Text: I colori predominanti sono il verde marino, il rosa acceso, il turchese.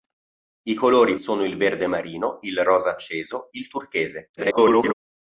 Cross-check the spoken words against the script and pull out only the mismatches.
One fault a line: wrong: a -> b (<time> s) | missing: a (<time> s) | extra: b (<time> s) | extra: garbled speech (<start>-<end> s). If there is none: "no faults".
missing: predominanti (1.1 s)
extra: garbled speech (4.4-4.9 s)